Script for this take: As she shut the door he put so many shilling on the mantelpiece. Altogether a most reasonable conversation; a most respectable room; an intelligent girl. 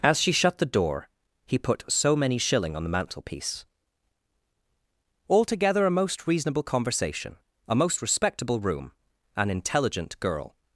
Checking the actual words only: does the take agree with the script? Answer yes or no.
yes